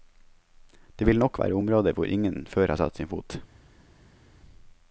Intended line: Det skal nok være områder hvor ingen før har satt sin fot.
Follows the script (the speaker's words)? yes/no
no